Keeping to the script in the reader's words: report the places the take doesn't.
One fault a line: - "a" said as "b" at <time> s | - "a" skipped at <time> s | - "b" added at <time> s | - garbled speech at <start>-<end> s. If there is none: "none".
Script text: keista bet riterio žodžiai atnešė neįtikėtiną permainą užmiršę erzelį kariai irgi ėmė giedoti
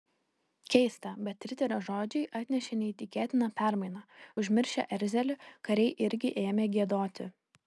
none